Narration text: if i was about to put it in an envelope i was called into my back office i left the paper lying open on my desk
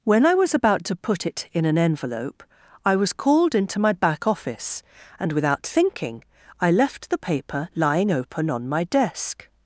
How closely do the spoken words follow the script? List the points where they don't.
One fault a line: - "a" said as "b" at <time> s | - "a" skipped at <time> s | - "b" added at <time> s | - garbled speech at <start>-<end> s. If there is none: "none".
- "if" said as "when" at 0.0 s
- "and without thinking" added at 5.2 s